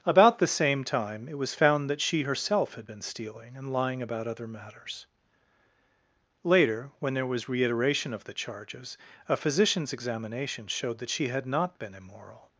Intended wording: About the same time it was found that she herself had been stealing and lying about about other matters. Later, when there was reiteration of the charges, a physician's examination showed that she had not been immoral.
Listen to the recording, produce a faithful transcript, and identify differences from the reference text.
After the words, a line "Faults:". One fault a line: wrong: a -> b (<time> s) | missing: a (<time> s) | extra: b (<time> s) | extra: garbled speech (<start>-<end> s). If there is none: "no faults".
About the same time it was found that she herself had been stealing and lying about other matters. Later, when there was reiteration of the charges, a physician's examination showed that she had not been immoral.
Faults:
missing: about (4.3 s)